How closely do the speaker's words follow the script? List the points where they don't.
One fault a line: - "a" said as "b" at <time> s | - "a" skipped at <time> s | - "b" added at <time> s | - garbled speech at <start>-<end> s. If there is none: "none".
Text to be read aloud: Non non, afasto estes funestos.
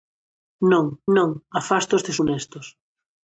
none